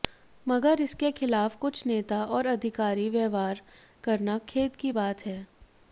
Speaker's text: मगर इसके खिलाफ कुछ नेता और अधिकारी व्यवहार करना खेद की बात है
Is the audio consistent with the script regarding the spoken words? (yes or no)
yes